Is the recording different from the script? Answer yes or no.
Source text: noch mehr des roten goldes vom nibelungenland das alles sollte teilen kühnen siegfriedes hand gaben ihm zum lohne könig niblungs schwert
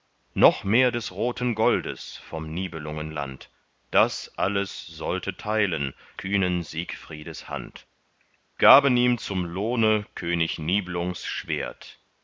no